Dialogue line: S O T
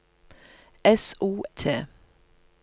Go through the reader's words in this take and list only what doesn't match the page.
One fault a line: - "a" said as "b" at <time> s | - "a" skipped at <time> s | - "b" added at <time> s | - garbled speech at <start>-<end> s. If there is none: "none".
none